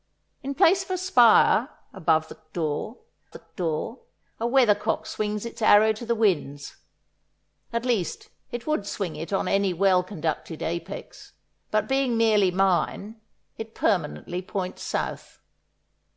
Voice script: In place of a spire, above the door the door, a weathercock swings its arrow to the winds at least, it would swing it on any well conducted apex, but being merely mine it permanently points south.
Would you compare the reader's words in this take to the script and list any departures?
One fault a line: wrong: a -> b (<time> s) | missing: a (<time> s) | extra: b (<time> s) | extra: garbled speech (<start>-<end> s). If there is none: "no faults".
no faults